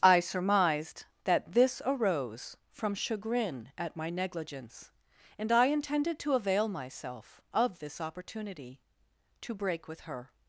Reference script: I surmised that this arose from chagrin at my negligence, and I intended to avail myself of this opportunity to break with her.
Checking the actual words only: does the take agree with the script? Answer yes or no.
yes